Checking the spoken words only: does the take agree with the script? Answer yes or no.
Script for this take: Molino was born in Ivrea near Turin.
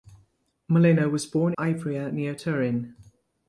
no